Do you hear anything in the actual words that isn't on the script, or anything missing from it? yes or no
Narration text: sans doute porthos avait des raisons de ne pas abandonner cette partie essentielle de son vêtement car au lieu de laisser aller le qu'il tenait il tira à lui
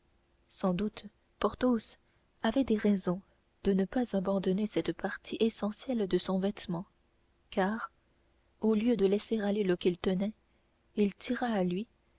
no